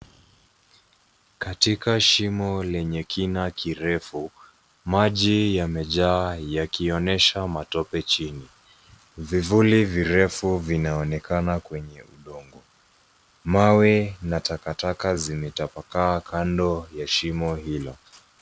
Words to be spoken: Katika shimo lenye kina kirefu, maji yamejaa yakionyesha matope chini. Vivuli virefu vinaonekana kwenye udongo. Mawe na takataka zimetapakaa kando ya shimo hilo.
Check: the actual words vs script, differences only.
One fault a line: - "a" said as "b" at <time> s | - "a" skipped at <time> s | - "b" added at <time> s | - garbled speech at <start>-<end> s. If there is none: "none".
none